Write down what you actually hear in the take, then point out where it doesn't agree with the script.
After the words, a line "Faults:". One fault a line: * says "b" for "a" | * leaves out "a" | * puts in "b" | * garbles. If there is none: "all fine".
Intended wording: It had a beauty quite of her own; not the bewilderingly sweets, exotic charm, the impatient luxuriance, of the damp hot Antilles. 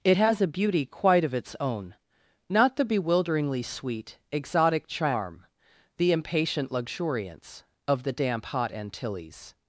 It has a beauty quite of its own; not the bewilderingly sweet, exotic charm, the impatient luxuriance, of the damp hot Antilles.
Faults:
* says "has" for "had"
* says "its" for "her"
* says "sweet" for "sweets"